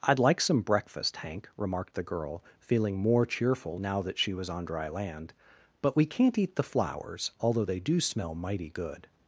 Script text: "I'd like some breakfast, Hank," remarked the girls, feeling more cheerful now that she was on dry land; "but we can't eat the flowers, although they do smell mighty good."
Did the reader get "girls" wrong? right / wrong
wrong